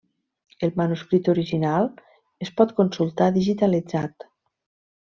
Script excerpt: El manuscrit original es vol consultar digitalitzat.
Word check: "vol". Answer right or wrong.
wrong